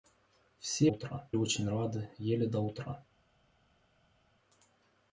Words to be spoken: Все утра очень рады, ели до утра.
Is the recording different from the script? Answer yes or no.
no